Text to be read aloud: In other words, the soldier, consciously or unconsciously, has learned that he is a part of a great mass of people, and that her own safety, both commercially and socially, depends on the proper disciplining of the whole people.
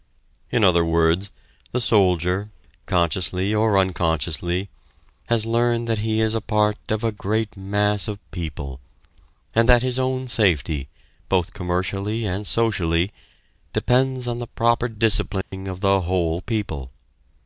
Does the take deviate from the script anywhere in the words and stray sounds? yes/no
yes